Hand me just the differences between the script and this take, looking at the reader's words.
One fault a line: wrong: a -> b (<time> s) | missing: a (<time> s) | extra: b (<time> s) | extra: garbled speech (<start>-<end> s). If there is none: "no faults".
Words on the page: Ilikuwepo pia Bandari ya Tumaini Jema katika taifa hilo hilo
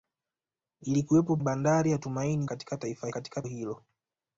missing: pia (1.4 s)
missing: Jema (2.5 s)
wrong: hilo -> katika (3.1 s)